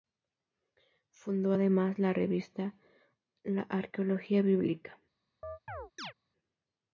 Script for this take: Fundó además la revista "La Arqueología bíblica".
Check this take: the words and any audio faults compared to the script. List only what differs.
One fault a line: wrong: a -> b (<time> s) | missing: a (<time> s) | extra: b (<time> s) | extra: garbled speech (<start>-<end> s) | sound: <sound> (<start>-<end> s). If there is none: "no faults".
sound: chirp (5.4-6.1 s)